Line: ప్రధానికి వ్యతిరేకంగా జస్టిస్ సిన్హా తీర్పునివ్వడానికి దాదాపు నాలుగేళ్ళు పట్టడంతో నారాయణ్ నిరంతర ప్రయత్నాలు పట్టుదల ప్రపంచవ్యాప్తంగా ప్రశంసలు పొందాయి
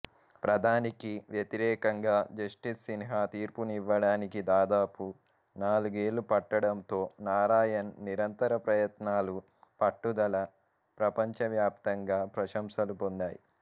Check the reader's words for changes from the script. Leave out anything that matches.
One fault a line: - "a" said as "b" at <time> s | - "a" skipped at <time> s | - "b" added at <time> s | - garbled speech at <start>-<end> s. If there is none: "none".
none